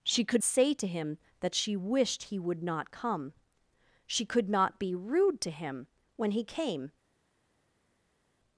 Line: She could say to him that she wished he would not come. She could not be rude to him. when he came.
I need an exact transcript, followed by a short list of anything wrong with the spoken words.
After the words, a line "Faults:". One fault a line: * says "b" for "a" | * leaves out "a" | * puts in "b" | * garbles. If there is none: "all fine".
She could say to him that she wished he would not come. She could not be rude to him. when he came.
Faults:
all fine